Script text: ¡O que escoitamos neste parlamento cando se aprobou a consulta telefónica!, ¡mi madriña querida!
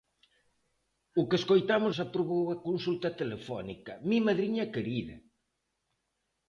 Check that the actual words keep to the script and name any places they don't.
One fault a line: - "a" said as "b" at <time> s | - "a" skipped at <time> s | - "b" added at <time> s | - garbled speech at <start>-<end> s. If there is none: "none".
- "neste parlamento cando" skipped at 1.9 s